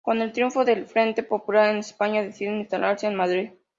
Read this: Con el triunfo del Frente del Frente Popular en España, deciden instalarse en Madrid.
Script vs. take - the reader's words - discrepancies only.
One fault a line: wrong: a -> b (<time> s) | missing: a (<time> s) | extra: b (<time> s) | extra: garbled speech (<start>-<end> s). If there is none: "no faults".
missing: del Frente (1.2 s)